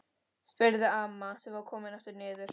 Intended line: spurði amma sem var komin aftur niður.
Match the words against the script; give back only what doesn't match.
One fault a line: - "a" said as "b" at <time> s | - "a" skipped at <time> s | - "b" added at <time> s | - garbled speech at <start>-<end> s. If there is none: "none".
none